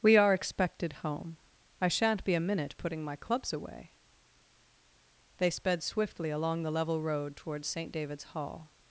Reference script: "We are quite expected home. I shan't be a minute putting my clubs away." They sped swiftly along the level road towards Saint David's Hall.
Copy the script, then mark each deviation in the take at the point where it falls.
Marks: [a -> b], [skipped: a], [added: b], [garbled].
"We are [skipped: quite] expected home. I shan't be a minute putting my clubs away." They sped swiftly along the level road towards Saint David's Hall.